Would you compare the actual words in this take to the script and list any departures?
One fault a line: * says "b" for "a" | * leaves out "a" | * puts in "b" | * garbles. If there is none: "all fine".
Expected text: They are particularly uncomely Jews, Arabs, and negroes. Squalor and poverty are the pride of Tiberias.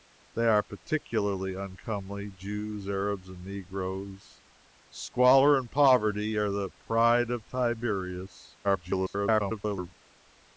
* garbles